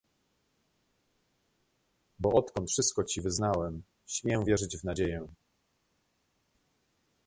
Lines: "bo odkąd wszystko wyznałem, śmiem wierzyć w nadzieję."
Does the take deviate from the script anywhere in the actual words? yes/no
yes